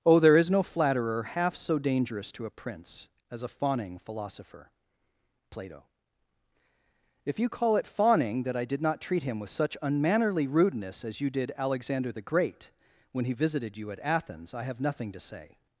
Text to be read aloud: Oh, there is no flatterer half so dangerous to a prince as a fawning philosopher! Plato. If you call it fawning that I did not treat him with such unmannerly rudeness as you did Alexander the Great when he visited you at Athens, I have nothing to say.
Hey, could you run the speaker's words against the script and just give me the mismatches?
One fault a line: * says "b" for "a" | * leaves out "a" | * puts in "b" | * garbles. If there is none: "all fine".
all fine